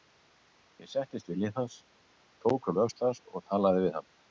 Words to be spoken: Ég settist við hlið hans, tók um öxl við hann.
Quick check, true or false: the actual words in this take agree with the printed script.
false